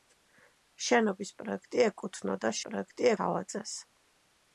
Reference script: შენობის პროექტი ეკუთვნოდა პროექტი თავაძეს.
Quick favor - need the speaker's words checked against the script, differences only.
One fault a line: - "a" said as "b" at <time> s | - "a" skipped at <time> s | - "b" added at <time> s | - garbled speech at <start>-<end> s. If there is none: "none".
none